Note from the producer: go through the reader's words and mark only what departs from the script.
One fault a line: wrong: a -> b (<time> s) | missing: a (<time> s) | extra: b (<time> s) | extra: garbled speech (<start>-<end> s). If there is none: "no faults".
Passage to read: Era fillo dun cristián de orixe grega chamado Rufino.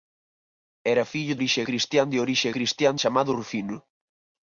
wrong: dun -> orixe (1.4 s)
wrong: grega -> cristián (2.6 s)